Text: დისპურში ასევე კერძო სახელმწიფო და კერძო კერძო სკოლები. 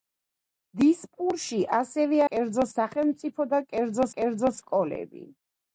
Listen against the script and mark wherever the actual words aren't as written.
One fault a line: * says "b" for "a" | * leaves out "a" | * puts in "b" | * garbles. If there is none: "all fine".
all fine